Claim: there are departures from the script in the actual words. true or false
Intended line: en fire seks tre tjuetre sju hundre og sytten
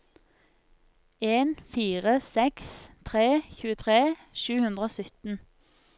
false